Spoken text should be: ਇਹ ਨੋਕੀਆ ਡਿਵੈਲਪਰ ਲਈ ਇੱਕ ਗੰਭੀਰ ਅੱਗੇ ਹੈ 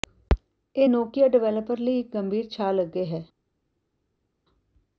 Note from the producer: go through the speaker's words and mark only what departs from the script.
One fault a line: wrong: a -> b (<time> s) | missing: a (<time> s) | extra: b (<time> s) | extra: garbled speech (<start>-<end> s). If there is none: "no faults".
extra: ਛਾਲ (2.5 s)